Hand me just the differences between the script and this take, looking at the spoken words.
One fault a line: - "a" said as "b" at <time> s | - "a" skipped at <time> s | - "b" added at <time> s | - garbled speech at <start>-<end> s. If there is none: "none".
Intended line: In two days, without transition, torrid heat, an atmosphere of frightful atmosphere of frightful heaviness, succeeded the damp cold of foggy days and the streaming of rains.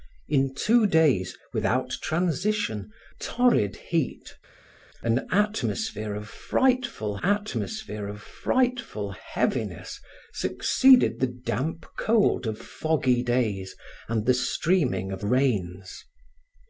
none